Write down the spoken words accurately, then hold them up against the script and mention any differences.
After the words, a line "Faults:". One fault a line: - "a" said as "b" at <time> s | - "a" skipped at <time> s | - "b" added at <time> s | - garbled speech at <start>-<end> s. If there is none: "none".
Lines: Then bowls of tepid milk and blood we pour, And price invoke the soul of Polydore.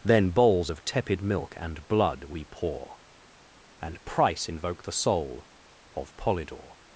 Then bowls of tepid milk and blood we pour, And price invoke the soul of Polydore.
Faults:
none